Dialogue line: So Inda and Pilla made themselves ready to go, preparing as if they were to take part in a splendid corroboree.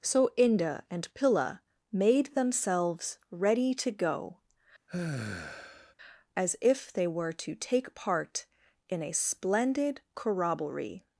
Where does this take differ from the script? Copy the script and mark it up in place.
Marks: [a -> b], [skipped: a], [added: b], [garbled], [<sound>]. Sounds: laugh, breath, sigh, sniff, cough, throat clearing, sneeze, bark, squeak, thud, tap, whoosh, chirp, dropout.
So Inda and Pilla made themselves ready to go, [skipped: preparing] [sigh] as if they were to take part in a splendid corroboree.